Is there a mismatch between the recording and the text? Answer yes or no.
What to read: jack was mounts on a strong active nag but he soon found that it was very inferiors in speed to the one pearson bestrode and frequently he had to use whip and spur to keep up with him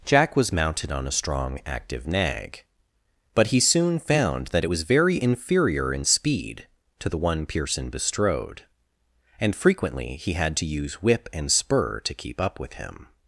yes